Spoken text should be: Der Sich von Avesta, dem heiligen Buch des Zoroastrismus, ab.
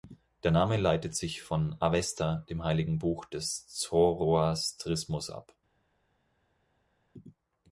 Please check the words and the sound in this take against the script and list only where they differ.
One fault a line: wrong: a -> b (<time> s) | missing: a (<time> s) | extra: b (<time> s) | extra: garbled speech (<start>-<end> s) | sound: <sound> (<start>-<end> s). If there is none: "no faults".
extra: Name leitet (0.5 s)